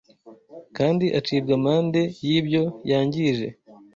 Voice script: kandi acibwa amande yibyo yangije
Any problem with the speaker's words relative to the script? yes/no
no